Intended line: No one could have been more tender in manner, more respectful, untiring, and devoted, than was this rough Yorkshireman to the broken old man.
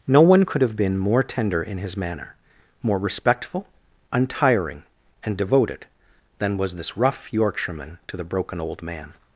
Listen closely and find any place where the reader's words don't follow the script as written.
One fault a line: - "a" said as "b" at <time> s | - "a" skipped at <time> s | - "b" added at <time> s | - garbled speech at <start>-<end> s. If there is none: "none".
- "his" added at 1.8 s